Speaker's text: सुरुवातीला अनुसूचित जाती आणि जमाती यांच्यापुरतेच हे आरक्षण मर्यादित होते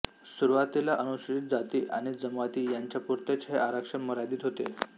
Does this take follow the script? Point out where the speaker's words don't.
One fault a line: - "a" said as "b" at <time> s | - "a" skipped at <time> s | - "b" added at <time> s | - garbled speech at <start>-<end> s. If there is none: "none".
none